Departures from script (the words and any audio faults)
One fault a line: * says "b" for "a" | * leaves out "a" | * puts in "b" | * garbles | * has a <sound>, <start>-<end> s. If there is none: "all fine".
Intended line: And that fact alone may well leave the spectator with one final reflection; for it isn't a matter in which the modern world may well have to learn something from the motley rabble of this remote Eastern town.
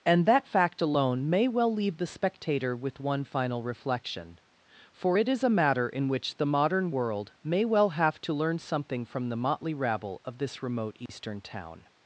* says "is" for "isn't"
* has a dropout, 11.1-11.1 s